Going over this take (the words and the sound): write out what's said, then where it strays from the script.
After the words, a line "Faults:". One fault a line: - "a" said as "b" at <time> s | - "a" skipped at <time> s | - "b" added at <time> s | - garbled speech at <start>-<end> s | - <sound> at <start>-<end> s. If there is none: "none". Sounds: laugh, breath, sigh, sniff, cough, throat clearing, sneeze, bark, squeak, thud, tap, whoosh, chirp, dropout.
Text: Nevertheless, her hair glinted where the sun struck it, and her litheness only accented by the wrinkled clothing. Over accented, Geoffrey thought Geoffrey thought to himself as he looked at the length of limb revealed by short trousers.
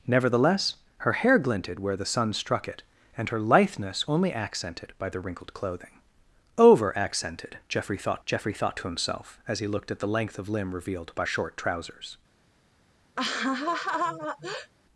Nevertheless, her hair glinted where the sun struck it, and her litheness only accented by the wrinkled clothing. Over accented, Geoffrey thought Geoffrey thought to himself as he looked at the length of limb revealed by short trousers.
Faults:
- laugh at 13.2-14.7 s